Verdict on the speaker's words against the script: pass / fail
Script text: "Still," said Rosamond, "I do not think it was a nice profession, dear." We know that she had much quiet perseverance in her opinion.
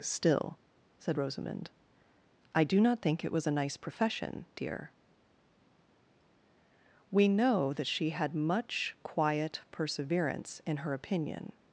pass